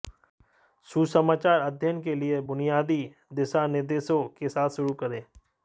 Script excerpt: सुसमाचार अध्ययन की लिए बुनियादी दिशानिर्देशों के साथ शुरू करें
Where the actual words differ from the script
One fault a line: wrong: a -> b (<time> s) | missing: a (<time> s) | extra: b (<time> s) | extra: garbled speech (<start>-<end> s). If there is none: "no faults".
wrong: की -> के (2.0 s)